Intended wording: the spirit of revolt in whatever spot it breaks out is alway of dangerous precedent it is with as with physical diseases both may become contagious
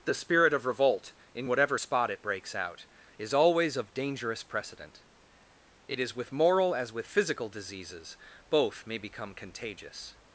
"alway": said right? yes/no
no